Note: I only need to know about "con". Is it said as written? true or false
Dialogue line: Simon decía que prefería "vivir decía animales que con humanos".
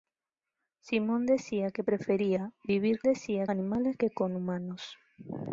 true